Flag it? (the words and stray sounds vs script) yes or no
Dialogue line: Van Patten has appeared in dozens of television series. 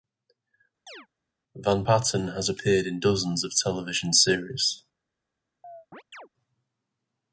yes